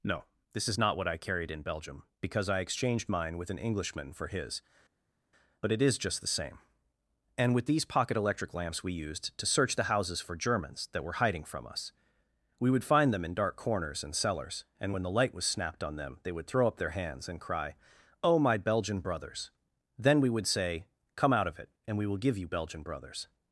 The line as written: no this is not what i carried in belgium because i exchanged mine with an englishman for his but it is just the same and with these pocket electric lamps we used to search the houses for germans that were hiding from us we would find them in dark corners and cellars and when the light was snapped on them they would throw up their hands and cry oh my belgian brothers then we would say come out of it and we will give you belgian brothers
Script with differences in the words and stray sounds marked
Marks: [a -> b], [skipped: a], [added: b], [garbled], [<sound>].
no this is not what i carried in belgium because i exchanged mine with an englishman for his but it is just the same and with these pocket electric lamps we used to search the houses for germans that were hiding from us we would find them in dark corners and cellars and when the light was snapped on them they would throw up their hands and cry oh my belgian brothers then we would say come out of it and we will give you belgian brothers